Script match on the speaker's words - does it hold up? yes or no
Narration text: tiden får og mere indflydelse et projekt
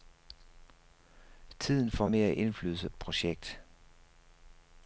yes